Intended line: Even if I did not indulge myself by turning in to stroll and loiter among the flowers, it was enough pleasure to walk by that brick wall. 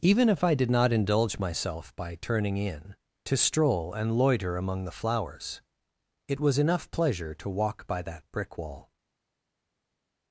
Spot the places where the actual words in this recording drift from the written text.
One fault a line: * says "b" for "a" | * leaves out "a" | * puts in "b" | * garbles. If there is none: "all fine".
all fine